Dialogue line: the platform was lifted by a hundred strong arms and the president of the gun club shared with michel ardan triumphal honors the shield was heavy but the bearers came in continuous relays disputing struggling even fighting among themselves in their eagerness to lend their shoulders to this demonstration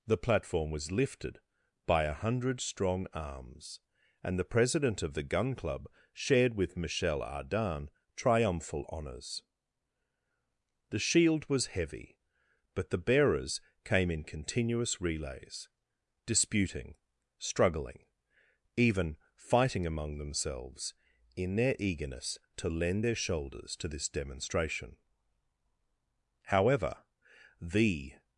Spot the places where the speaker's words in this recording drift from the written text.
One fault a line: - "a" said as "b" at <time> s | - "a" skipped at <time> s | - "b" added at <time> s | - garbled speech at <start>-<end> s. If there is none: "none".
- "however the" added at 26.4 s